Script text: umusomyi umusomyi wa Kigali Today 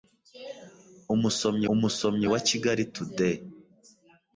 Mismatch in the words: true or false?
false